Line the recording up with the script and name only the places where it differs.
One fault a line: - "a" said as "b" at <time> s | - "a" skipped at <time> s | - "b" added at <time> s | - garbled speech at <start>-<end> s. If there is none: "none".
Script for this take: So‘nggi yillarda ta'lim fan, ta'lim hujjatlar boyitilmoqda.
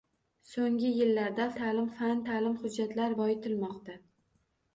none